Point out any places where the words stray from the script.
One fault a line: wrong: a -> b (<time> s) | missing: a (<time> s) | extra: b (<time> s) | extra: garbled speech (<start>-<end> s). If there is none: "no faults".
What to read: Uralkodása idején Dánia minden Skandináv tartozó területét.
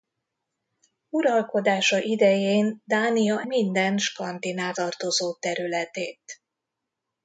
no faults